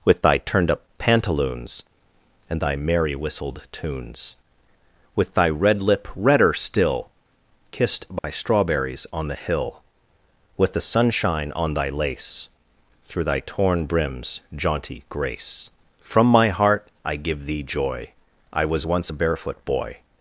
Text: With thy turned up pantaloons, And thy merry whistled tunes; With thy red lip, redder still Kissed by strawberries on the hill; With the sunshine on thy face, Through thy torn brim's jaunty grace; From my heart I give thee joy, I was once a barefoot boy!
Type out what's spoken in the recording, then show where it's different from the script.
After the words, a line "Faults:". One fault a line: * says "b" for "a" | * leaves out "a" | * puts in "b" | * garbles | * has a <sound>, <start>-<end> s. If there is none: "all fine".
With thy turned up pantaloons, And thy merry whistled tunes; With thy red lip, redder still Kissed by strawberries on the hill; With the sunshine on thy lace, Through thy torn brim's jaunty grace; From my heart I give thee joy, I was once a barefoot boy!
Faults:
* has a dropout, 8.2-8.2 s
* says "lace" for "face"